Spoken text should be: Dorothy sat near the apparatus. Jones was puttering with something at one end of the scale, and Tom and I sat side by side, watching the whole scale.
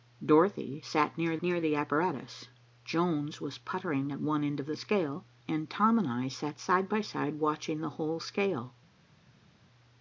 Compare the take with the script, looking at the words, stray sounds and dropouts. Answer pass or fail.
fail